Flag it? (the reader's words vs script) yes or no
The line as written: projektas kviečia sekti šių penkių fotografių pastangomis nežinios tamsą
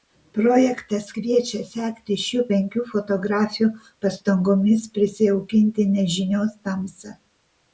yes